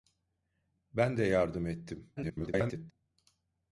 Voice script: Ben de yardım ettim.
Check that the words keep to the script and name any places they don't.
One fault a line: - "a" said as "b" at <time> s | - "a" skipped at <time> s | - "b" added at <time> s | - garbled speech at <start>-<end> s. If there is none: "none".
- garbled speech at 2.2-2.9 s